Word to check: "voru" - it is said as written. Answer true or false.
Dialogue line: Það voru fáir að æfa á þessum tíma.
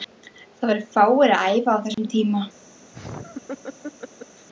true